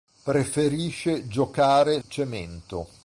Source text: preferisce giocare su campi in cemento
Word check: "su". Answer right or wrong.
wrong